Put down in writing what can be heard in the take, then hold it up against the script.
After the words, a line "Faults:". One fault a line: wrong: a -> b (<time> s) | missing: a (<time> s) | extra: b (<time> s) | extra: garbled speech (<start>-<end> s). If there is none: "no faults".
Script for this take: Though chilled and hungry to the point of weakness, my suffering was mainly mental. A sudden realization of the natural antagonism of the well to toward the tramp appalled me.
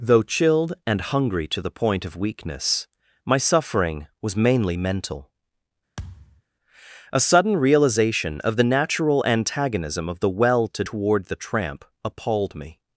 Though chilled and hungry to the point of weakness, my suffering was mainly mental. A sudden realization of the natural antagonism of the well to toward the tramp appalled me.
Faults:
no faults